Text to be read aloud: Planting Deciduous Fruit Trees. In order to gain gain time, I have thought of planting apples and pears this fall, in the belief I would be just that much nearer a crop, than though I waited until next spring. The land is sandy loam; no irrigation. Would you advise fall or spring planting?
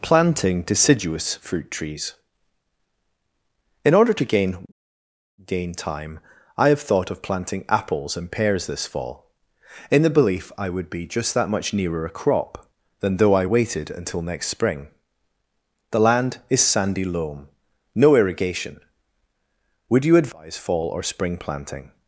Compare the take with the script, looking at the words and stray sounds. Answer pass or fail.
pass